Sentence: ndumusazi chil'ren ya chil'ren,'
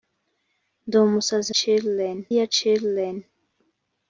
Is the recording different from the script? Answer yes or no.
no